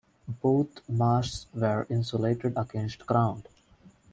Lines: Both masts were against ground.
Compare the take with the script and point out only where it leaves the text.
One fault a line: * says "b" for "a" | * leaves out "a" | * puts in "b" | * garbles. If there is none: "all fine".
* puts in "insulated"